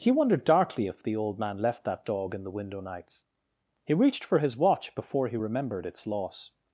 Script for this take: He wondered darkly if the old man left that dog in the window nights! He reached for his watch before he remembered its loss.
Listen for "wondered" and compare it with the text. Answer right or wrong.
right